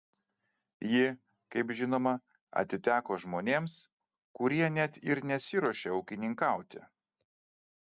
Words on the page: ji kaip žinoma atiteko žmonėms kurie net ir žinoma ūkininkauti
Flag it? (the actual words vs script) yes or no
yes